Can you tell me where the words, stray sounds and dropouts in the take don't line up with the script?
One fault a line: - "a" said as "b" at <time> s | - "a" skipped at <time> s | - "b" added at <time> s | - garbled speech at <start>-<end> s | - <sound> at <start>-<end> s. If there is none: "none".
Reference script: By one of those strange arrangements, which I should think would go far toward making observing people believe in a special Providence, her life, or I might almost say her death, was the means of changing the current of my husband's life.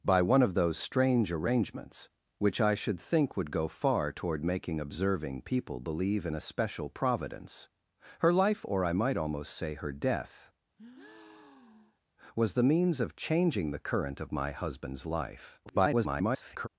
- breath at 10.8-12.0 s
- garbled speech at 15.6-16.7 s